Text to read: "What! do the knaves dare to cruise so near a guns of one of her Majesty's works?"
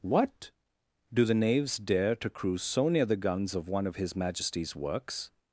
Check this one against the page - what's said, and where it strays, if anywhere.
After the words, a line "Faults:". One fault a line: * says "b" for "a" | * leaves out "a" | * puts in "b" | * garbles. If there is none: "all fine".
"What! do the knaves dare to cruise so near the guns of one of his Majesty's works?"
Faults:
* says "the" for "a"
* says "his" for "her"